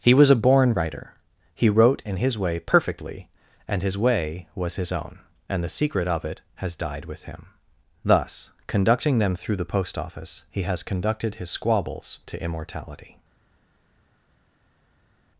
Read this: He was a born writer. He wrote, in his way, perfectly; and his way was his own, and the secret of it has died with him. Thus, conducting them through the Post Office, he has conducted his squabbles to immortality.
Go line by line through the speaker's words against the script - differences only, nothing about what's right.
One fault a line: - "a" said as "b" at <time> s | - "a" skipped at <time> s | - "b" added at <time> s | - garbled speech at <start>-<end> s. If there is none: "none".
none